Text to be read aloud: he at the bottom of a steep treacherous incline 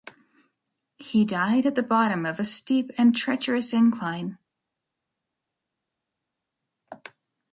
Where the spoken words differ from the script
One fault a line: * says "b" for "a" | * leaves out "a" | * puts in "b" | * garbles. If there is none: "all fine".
* puts in "died"
* puts in "and"